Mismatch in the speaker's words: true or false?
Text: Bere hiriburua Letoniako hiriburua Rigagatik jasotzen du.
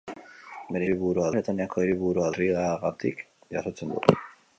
false